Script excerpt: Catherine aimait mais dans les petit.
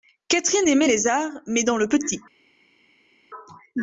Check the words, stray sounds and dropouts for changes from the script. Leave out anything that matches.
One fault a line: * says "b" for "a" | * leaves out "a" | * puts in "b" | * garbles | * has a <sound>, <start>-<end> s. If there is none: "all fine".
* puts in "les arts"
* says "le" for "les"